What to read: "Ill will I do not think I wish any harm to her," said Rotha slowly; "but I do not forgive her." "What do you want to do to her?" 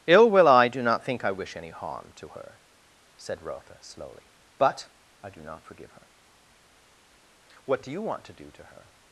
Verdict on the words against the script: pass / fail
pass